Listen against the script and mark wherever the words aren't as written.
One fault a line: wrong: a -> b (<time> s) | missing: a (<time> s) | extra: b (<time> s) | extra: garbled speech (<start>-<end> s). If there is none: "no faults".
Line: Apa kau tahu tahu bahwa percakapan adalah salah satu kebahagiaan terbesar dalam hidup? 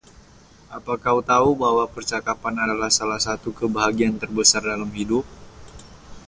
missing: tahu (1.5 s)